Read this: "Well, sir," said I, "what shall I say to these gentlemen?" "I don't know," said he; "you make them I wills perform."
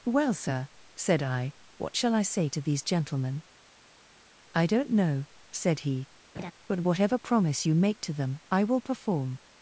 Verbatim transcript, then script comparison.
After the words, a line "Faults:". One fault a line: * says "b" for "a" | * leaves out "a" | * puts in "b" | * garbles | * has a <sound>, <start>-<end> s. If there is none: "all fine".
"Well, sir," said I, "what shall I say to these gentlemen?" "I don't know," said he; "but whatever promise you make to them I will perform."
Faults:
* has a laugh, 6.3-6.5 s
* puts in "but whatever promise"
* puts in "to"
* says "will" for "wills"